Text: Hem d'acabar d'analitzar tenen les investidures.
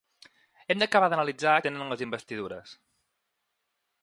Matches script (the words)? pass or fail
pass